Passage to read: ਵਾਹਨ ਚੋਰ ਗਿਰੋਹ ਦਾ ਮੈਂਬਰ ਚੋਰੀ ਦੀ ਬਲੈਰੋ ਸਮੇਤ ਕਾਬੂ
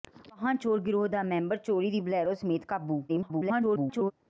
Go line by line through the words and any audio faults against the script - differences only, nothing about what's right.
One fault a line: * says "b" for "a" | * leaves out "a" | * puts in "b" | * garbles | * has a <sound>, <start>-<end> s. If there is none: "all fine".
* garbles